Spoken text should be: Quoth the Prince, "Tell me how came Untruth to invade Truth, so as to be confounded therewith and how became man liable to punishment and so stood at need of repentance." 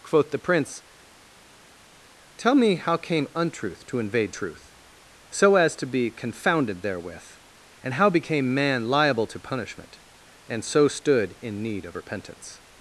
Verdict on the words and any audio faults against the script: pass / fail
fail